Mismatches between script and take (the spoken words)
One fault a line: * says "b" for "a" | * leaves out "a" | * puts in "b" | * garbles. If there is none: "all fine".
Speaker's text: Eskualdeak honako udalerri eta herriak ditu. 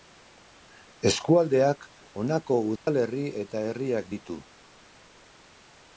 all fine